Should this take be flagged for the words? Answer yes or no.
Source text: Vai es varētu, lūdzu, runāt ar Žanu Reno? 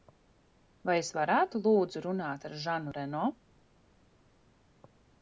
no